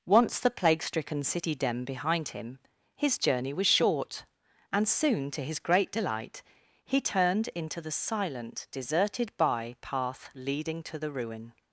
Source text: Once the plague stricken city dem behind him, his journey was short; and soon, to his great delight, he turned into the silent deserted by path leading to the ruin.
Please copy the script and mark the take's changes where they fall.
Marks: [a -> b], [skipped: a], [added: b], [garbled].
Once the plague stricken city dem behind him, his journey was short; and soon, to his great delight, he turned into the silent deserted by path leading to the ruin.